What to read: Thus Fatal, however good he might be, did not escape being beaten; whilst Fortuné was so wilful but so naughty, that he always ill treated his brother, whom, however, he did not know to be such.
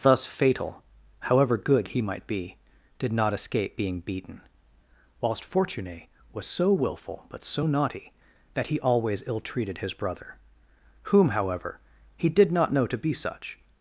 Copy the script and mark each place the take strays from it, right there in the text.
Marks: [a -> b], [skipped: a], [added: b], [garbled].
Thus Fatal, however good he might be, did not escape being beaten; whilst Fortuné was so wilful but so naughty, that he always ill treated his brother, whom, however, he did not know to be such.